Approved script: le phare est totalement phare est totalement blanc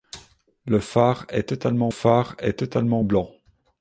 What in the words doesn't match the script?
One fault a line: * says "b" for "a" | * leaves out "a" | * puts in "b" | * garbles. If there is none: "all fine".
all fine